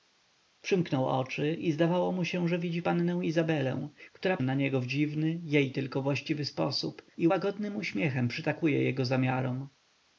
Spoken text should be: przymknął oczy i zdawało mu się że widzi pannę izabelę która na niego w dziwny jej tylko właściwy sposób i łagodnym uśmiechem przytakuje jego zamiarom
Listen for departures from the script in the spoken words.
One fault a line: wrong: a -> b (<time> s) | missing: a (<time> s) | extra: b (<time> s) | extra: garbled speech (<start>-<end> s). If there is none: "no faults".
no faults